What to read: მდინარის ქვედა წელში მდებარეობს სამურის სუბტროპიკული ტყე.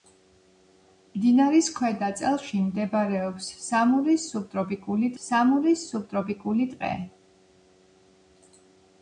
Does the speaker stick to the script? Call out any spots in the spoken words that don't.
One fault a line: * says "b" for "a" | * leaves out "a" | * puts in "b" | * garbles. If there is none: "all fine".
* puts in "სამურის სუბტროპიკული"